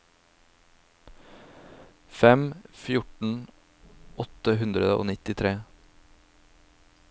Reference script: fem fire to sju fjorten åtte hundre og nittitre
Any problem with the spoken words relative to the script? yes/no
yes